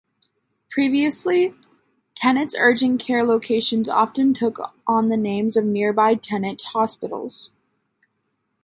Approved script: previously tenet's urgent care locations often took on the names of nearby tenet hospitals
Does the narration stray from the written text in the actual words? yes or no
no